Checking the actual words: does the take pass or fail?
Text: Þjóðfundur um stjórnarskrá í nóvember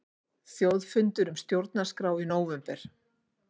pass